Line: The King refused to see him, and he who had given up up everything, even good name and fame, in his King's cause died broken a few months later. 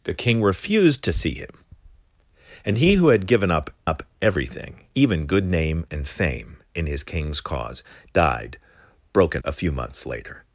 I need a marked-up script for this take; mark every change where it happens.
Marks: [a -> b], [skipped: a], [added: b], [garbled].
The King refused to see him, and he who had given up up everything, even good name and fame, in his King's cause died broken a few months later.